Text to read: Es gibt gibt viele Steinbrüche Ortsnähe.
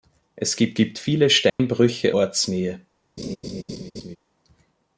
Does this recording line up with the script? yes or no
yes